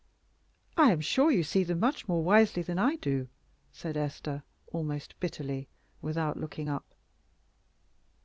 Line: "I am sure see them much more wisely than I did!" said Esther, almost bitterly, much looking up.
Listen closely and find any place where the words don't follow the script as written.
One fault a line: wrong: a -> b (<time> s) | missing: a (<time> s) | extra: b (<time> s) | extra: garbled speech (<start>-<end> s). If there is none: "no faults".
extra: you (1.3 s)
wrong: did -> do (2.9 s)
wrong: much -> without (6.0 s)